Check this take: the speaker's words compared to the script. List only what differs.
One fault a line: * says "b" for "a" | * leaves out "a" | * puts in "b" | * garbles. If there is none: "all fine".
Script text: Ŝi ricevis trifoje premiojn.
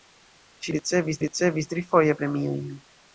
* puts in "ricevis"